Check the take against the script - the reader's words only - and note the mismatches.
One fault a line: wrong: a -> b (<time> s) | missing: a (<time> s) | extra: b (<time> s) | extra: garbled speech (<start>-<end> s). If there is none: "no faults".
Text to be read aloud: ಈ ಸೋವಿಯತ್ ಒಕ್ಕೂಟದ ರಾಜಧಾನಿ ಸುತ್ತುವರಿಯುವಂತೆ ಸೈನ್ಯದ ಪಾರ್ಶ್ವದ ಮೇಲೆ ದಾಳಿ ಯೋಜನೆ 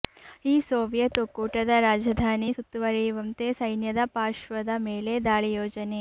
no faults